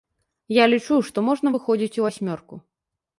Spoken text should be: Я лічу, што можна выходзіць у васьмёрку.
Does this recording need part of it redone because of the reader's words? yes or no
no